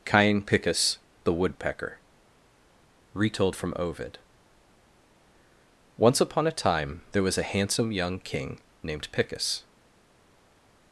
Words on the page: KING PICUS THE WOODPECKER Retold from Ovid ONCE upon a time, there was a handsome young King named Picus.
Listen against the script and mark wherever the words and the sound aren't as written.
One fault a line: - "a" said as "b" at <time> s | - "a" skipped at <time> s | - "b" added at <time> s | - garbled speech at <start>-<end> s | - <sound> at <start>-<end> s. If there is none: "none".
- "KING" said as "Cain" at 0.0 s